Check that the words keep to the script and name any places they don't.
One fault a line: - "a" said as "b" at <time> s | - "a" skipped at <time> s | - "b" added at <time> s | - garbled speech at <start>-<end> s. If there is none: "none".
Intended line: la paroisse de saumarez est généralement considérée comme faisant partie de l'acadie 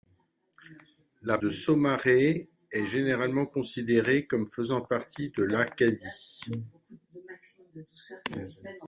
- "paroisse" skipped at 1.4 s